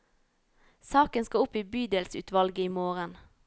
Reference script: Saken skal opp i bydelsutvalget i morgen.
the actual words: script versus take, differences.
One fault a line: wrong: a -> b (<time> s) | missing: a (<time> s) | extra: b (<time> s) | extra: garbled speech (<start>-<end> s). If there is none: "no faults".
no faults